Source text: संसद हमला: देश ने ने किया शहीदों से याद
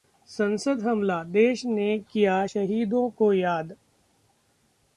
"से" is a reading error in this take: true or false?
true